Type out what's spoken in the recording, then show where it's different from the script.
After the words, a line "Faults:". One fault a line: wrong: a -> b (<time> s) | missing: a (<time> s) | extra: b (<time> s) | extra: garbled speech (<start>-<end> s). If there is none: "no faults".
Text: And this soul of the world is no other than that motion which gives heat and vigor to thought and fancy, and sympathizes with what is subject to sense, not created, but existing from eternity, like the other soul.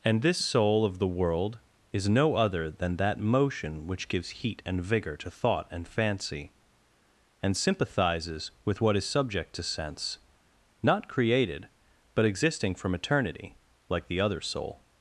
And this soul of the world is no other than that motion which gives heat and vigor to thought and fancy, and sympathizes with what is subject to sense, not created, but existing from eternity, like the other soul.
Faults:
no faults